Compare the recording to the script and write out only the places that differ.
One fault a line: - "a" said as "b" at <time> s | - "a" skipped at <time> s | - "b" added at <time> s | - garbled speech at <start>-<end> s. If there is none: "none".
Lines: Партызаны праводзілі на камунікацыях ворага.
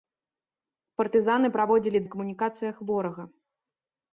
none